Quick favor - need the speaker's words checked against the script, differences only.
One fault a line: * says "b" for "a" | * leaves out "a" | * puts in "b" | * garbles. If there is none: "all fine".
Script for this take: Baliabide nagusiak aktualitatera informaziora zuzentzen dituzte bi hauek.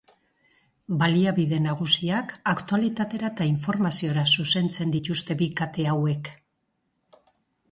* puts in "eta"
* puts in "kate"